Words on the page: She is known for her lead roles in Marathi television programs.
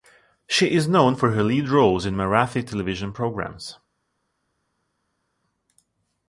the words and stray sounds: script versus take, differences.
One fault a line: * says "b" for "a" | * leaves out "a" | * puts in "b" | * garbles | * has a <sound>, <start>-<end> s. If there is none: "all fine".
all fine